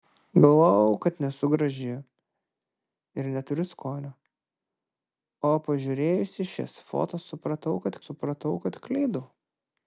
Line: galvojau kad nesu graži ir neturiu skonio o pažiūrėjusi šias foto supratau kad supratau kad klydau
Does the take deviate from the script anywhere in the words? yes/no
no